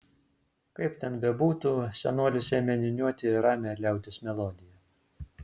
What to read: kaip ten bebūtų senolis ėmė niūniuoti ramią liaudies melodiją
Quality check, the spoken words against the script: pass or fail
pass